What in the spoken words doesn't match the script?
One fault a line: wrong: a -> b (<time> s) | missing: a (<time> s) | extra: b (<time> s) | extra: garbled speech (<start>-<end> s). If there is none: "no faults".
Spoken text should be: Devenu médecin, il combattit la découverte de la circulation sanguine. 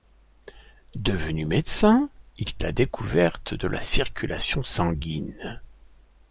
missing: combattit (2.5 s)